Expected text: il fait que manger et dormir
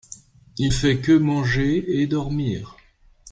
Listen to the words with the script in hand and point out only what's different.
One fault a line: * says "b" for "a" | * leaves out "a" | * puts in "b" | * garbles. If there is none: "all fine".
all fine